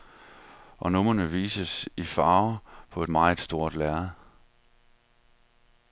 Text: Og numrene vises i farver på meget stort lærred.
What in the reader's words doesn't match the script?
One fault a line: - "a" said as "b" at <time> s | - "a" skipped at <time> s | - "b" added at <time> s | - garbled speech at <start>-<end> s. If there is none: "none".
none